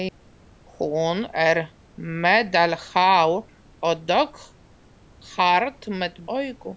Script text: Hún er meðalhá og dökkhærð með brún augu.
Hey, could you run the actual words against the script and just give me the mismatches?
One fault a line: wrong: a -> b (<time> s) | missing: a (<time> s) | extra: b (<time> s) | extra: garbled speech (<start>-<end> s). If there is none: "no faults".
missing: brún (6.2 s)